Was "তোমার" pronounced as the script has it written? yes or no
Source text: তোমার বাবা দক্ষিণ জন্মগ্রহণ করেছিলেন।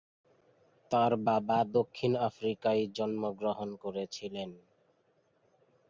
no